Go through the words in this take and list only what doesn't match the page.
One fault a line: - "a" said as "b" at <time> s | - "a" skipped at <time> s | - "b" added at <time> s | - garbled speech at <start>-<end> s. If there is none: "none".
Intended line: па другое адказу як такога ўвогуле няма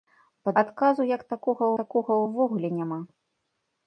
- "другое" skipped at 0.5 s
- "такога" added at 1.8 s